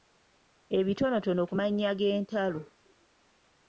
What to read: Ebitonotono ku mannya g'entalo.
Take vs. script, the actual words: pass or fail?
pass